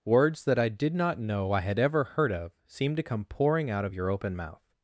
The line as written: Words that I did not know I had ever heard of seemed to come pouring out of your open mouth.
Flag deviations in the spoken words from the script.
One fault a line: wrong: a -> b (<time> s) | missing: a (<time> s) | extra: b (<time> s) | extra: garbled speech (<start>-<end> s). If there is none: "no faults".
no faults